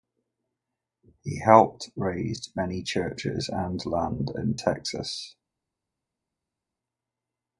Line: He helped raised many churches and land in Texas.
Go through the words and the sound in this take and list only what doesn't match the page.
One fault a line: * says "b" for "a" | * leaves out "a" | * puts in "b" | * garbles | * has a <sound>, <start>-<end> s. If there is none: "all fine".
all fine